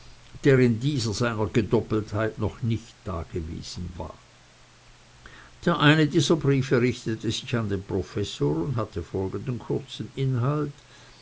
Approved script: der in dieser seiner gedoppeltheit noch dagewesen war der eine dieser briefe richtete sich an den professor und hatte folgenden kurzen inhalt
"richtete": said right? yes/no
yes